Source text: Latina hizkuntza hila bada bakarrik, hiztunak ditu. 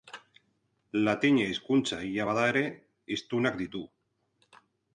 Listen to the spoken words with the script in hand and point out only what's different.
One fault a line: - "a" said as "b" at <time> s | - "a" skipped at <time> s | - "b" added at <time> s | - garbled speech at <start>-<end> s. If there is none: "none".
- "bakarrik" said as "ere" at 2.5 s